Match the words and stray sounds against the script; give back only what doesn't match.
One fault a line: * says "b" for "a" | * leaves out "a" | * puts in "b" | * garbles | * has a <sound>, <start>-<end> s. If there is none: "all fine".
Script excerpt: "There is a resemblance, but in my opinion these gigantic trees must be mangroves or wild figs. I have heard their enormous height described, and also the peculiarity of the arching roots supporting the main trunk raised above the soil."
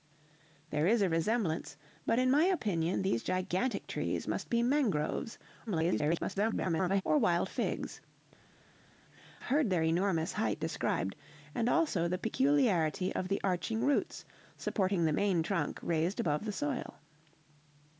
* garbles
* leaves out "I have"